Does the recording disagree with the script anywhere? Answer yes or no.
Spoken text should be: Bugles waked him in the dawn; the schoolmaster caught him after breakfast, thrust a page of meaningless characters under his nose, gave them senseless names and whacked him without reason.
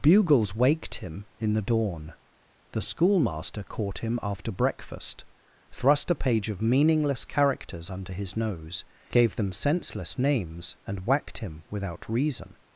no